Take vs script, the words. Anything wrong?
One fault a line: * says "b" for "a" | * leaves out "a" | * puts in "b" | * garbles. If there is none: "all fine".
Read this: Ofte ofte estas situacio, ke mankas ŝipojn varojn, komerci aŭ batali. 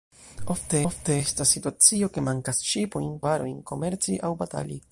all fine